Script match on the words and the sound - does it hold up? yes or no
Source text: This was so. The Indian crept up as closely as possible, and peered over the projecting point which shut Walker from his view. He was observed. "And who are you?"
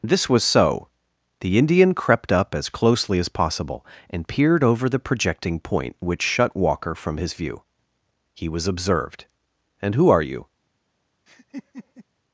no